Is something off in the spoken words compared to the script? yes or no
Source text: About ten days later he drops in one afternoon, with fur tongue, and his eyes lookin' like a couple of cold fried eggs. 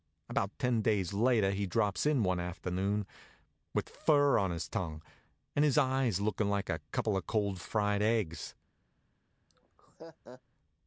yes